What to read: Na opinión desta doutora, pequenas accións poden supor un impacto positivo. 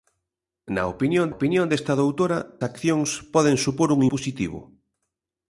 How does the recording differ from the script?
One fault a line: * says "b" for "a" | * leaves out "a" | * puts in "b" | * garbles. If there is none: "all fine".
* puts in "opinión"
* leaves out "pequenas"
* leaves out "impacto"